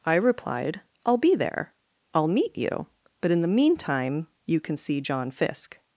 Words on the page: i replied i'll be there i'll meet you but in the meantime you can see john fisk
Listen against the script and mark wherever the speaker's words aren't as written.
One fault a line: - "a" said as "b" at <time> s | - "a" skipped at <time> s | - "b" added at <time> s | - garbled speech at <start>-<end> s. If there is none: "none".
none